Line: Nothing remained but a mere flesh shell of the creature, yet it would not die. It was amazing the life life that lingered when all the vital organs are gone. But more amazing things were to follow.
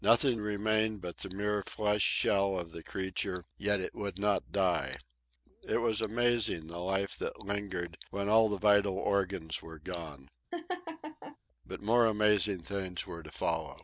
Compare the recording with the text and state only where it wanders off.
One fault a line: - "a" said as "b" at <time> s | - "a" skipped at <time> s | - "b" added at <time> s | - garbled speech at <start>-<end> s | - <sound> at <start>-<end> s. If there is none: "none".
- "a" said as "the" at 1.2 s
- "life" skipped at 7.2 s
- "are" said as "were" at 9.6 s
- laugh at 10.5-11.4 s